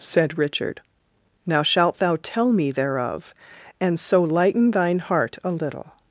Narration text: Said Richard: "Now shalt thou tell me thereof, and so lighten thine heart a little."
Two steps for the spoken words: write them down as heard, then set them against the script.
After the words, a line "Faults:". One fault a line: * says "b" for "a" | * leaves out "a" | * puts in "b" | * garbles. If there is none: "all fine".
Said Richard: "Now shalt thou tell me thereof, and so lighten thine heart a little."
Faults:
all fine